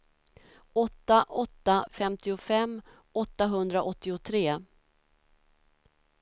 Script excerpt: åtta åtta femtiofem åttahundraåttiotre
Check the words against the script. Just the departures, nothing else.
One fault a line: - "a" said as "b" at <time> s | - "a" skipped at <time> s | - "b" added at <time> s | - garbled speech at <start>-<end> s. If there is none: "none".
none